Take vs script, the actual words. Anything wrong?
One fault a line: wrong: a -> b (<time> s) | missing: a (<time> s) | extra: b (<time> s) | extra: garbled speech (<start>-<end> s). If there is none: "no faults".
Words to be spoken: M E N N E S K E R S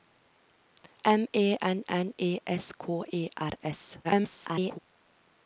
extra: garbled speech (4.0-4.8 s)